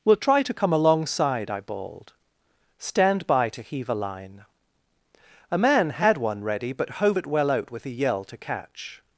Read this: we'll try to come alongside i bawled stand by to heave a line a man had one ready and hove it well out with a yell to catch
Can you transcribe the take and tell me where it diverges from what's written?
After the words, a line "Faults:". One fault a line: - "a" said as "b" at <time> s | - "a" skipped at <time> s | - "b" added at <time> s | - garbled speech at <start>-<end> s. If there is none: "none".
we'll try to come alongside i bawled stand by to heave a line a man had one ready but hove it well out with a yell to catch
Faults:
- "and" said as "but" at 6.7 s